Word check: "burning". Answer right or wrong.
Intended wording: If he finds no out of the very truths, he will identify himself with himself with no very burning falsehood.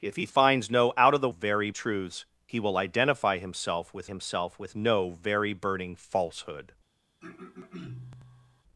right